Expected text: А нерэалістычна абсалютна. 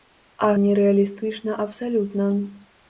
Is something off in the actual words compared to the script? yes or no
no